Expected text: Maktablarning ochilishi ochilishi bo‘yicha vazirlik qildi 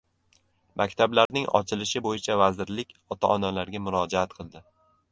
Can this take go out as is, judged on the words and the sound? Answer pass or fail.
fail